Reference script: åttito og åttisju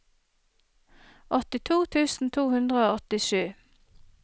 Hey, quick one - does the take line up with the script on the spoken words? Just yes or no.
no